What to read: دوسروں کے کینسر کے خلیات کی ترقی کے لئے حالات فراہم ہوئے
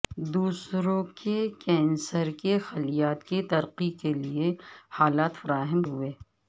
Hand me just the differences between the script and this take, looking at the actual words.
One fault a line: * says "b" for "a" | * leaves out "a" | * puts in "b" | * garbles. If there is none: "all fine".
all fine